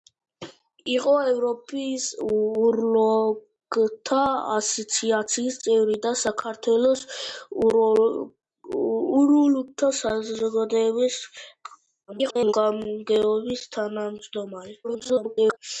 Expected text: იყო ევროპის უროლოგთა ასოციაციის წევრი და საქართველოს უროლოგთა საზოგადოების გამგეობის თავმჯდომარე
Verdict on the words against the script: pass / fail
fail